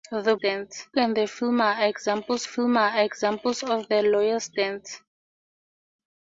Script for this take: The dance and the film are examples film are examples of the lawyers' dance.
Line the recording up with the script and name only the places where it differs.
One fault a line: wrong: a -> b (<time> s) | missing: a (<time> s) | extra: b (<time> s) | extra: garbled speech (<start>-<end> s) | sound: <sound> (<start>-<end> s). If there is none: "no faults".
no faults